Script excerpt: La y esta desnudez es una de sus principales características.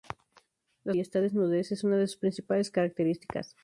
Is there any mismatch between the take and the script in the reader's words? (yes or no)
no